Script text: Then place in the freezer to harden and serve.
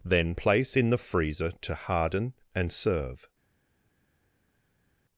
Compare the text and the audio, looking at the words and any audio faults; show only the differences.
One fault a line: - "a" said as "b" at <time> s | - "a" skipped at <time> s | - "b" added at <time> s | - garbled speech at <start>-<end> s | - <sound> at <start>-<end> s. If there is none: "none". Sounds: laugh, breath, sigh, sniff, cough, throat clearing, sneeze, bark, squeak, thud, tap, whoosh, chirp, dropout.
none